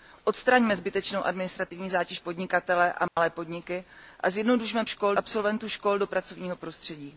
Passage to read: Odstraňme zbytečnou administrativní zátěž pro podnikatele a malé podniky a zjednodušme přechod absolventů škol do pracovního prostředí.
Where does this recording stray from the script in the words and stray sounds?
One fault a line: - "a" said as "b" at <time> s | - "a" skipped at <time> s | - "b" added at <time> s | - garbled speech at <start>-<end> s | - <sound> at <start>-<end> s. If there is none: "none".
- "pro" skipped at 2.2 s
- dropout at 3.1-3.2 s
- "přechod" said as "škol" at 4.8 s